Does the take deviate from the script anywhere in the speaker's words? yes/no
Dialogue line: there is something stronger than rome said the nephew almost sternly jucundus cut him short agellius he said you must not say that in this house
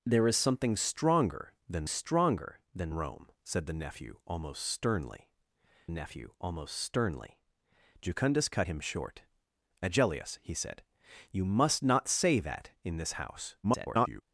yes